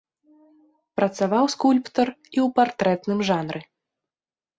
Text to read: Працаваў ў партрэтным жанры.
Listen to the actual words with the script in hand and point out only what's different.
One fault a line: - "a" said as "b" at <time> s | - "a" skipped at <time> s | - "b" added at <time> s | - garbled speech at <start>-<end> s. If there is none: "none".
- "скульптар і" added at 1.5 s